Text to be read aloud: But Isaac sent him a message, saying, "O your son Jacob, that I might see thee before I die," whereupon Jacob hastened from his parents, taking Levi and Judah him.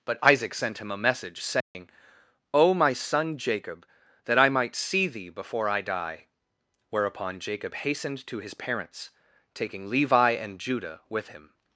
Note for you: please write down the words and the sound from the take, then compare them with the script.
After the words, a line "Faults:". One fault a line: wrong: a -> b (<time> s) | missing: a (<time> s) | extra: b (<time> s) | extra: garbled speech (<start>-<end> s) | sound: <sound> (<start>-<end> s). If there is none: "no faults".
But Isaac sent him a message, saying, "O my son Jacob, that I might see thee before I die," whereupon Jacob hastened to his parents, taking Levi and Judah with him.
Faults:
sound: dropout (1.6-1.7 s)
wrong: your -> my (2.7 s)
wrong: from -> to (8.2 s)
extra: with (11.1 s)